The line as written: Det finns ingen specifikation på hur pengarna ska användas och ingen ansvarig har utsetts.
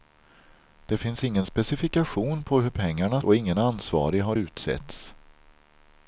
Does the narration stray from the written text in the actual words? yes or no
yes